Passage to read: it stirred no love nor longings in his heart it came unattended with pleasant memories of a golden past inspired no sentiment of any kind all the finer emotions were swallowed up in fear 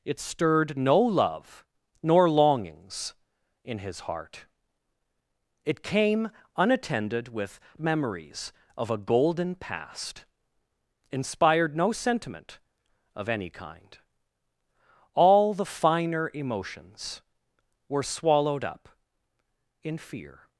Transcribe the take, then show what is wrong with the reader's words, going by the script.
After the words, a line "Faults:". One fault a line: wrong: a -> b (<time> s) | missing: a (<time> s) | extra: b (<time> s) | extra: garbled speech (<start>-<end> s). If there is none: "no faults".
it stirred no love nor longings in his heart it came unattended with memories of a golden past inspired no sentiment of any kind all the finer emotions were swallowed up in fear
Faults:
missing: pleasant (7.6 s)